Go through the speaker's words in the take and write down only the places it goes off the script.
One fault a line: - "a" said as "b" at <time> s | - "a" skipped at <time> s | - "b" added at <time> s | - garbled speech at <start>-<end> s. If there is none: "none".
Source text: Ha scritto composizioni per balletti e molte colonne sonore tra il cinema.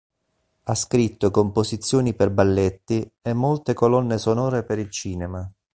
- "tra" said as "per" at 4.6 s